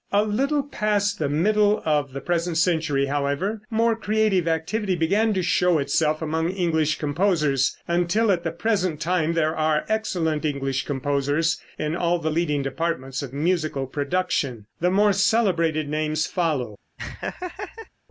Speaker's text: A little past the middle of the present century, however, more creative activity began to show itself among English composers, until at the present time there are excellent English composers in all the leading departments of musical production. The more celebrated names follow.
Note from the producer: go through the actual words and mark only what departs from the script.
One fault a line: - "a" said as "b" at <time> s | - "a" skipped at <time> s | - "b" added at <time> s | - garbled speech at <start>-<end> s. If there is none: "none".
none